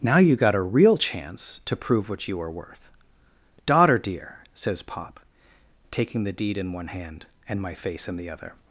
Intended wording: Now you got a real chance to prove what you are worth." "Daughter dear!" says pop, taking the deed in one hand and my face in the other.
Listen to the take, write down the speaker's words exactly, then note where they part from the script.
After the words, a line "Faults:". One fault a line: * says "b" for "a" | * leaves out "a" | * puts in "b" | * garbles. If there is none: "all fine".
Now you got a real chance to prove what you are worth." "Daughter dear!" says pop, taking the deed in one hand and my face in the other.
Faults:
all fine